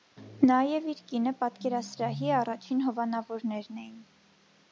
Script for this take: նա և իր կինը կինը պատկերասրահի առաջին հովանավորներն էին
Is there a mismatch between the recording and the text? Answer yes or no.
yes